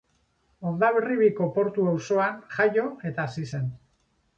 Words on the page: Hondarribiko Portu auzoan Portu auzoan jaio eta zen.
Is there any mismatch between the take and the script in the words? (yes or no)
yes